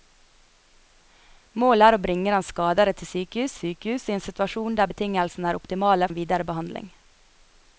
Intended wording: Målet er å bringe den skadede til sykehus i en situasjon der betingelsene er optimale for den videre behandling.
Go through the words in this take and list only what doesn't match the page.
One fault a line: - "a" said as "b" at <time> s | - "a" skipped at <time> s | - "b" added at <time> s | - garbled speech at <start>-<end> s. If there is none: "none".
- "sykehus" added at 3.6 s
- "for" skipped at 6.1 s